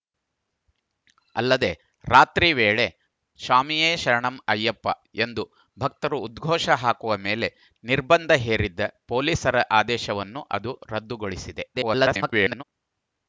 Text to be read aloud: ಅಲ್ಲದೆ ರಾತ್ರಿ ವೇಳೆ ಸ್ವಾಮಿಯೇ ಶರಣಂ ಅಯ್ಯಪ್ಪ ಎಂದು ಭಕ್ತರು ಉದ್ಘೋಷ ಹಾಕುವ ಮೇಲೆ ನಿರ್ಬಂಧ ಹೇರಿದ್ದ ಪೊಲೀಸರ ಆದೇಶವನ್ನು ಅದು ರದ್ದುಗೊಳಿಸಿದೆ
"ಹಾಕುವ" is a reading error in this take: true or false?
false